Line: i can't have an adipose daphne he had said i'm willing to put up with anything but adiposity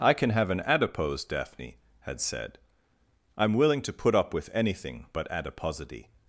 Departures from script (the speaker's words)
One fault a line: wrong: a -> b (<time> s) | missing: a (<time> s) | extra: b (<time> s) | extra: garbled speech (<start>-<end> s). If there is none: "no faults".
wrong: can't -> can (0.1 s)
missing: he (1.8 s)